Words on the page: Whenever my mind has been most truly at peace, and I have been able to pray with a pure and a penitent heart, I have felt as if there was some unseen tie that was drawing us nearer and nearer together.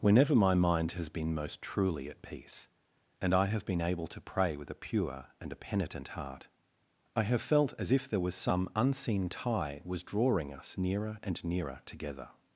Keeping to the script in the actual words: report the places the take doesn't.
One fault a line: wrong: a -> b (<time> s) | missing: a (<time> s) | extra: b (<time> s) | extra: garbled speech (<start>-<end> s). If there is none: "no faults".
missing: that (9.8 s)